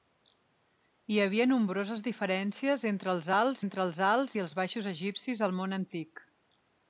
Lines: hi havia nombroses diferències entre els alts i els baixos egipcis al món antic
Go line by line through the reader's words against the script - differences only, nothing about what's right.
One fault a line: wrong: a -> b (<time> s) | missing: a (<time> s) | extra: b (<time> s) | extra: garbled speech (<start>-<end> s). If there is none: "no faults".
extra: entre els alts (3.6 s)